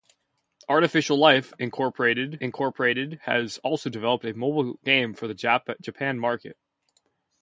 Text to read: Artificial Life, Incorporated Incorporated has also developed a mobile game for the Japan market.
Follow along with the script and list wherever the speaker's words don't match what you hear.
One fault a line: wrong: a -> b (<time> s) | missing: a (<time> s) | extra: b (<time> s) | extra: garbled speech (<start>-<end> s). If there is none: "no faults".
no faults